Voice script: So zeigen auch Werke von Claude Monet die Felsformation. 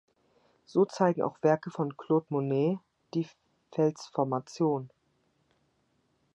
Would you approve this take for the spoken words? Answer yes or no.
yes